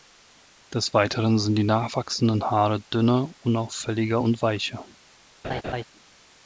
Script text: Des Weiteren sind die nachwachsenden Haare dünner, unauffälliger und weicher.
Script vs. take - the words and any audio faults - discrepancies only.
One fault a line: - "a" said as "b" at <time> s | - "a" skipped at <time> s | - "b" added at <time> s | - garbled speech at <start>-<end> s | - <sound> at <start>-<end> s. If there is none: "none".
- laugh at 5.4-5.8 s